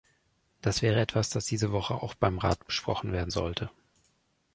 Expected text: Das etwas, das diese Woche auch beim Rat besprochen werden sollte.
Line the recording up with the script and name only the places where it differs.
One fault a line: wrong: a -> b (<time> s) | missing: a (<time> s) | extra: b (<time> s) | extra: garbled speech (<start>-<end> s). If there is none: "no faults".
extra: wäre (0.8 s)